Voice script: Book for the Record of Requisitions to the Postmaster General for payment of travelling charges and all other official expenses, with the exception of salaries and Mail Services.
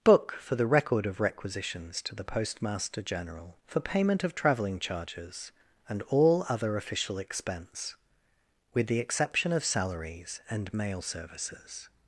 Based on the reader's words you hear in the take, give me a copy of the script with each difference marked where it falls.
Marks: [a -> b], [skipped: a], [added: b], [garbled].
Book for the Record of Requisitions to the Postmaster General for payment of travelling charges and all other official [expenses, -> expense] with the exception of salaries and Mail Services.